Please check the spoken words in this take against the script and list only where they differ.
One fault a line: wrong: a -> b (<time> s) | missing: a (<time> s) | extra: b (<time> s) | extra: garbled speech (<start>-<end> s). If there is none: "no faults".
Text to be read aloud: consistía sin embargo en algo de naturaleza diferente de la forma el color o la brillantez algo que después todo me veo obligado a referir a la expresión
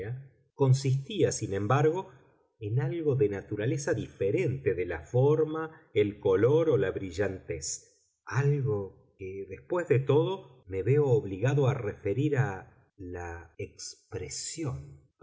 extra: de (9.9 s)